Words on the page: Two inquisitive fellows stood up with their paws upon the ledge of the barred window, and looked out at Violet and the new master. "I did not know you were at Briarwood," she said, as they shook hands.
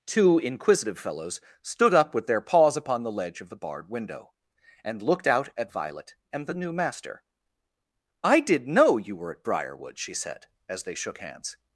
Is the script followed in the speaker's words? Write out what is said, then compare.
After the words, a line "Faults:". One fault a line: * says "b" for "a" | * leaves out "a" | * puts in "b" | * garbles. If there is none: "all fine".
Two inquisitive fellows stood up with their paws upon the ledge of the barred window, and looked out at Violet and the new master. "I did know you were at Briarwood," she said, as they shook hands.
Faults:
* leaves out "not"